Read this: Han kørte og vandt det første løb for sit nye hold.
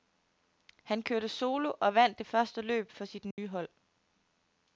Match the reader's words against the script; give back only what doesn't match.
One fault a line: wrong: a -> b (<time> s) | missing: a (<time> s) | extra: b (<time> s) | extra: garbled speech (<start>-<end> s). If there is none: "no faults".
extra: solo (1.3 s)